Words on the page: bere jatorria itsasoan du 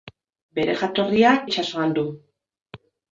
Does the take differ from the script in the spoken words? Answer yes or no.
no